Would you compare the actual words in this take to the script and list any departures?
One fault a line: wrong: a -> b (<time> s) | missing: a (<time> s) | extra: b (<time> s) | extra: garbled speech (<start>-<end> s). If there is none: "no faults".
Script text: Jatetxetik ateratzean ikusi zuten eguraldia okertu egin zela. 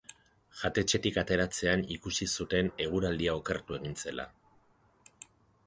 no faults